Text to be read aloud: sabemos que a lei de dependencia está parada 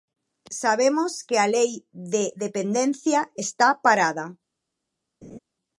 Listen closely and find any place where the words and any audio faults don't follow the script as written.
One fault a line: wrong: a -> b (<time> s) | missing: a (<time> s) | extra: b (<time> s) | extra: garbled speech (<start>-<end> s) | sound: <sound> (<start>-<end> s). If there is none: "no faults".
sound: laugh (5.2-5.4 s)